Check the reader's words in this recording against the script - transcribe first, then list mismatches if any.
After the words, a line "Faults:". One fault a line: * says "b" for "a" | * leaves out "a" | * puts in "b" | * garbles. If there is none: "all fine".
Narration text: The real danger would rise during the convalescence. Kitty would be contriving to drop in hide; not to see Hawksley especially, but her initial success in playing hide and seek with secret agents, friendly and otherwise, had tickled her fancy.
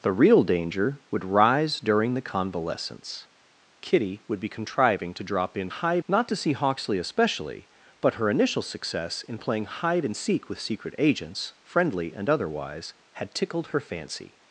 The real danger would rise during the convalescence. Kitty would be contriving to drop in hide; not to see Hawksley especially, but her initial success in playing hide and seek with secret agents, friendly and otherwise, had tickled her fancy.
Faults:
all fine